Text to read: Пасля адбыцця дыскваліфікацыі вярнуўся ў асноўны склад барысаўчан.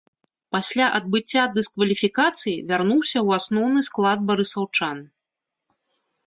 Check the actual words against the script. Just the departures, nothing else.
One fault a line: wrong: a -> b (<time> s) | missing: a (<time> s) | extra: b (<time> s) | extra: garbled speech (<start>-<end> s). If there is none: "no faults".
no faults